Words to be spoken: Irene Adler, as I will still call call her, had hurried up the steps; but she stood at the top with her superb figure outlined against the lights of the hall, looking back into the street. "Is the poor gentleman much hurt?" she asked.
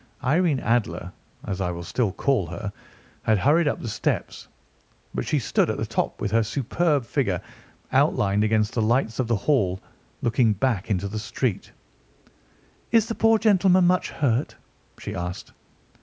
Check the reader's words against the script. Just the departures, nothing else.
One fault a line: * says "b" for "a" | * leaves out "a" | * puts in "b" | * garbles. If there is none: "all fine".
* leaves out "call"